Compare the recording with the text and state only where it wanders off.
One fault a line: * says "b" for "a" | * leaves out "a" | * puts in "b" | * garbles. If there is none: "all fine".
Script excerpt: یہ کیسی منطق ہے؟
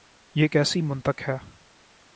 all fine